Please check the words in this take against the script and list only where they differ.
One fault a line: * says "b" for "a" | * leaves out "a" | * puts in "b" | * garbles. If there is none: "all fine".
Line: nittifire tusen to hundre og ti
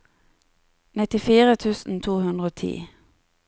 all fine